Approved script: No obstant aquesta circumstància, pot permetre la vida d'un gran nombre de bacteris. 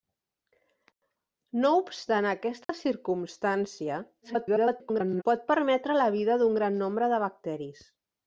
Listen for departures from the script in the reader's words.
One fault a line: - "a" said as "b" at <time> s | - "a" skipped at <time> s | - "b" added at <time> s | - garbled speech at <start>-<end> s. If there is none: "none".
- garbled speech at 4.2-5.2 s